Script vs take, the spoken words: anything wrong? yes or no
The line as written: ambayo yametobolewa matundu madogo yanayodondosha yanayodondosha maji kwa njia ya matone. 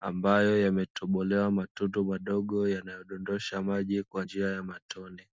yes